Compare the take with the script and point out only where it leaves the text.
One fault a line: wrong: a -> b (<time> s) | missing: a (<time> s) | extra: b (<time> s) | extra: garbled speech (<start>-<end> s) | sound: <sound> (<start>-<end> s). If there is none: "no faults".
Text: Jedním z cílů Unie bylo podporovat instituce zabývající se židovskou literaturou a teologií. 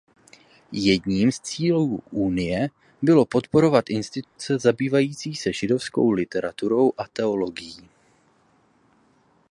sound: dropout (4.2-4.4 s)